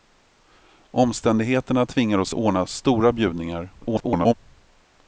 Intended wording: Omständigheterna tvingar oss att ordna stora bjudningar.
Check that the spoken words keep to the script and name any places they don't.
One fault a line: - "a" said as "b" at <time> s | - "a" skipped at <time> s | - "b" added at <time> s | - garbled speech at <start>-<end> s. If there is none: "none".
- "att" skipped at 2.3 s
- garbled speech at 3.8-4.3 s